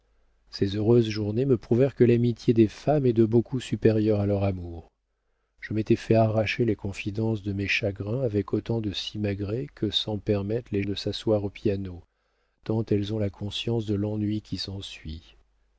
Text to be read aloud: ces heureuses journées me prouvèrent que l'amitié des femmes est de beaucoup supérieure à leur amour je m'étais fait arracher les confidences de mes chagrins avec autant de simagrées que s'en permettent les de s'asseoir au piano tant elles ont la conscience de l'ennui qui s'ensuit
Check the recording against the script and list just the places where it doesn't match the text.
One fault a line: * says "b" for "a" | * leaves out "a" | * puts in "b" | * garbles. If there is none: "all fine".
all fine